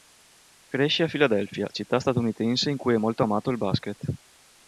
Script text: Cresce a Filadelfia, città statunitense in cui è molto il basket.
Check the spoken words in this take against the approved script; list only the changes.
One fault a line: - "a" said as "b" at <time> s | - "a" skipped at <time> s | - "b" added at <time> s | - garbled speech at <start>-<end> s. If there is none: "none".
- "amato" added at 3.2 s